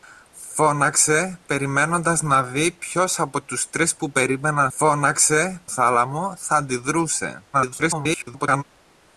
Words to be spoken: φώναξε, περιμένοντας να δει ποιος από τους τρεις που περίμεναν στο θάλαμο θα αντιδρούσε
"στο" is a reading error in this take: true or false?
true